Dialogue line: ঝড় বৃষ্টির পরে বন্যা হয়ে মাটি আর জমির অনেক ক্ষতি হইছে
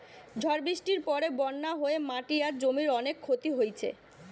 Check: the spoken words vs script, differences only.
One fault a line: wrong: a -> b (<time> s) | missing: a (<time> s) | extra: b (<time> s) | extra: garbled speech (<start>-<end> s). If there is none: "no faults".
no faults